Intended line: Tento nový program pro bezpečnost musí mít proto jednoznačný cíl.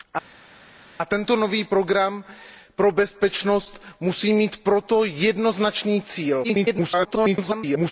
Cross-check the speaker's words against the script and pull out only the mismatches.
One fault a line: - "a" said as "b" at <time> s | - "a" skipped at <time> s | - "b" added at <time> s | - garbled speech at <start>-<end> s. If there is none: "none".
- garbled speech at 6.4-7.9 s